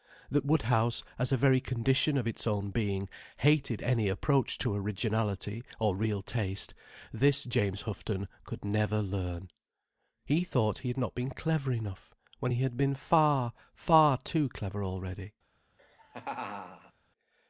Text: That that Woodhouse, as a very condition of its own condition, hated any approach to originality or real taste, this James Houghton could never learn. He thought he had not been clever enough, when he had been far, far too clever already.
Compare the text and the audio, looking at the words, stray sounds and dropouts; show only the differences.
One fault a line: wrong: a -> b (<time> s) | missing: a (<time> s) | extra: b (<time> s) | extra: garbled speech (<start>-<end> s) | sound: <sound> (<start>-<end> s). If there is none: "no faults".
missing: that (0.4 s)
wrong: condition -> being (2.7 s)
sound: laugh (15.8-16.9 s)